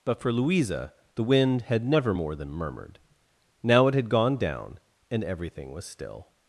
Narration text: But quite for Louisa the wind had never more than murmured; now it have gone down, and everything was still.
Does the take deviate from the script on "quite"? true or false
true